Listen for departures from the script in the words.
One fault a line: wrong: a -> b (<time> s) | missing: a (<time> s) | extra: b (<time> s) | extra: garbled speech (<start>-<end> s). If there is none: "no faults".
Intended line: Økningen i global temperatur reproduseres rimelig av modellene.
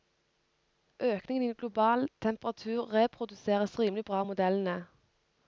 extra: bra (4.1 s)